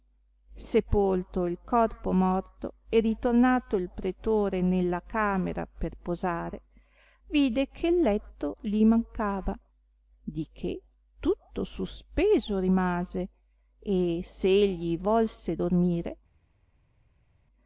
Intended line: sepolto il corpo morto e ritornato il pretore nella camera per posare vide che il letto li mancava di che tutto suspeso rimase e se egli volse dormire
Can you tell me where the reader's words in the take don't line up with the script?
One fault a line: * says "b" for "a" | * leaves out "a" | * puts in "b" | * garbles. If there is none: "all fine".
all fine